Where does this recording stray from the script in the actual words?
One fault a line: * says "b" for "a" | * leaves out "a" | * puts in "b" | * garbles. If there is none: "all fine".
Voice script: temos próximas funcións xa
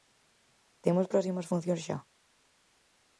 all fine